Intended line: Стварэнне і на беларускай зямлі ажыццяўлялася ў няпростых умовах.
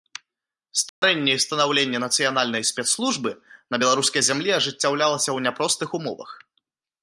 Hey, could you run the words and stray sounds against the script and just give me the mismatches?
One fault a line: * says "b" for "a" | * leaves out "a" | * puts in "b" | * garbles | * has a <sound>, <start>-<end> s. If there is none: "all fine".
* has a dropout, 0.9-1.0 s
* puts in "станаўленне нацыянальнай спецслужбы"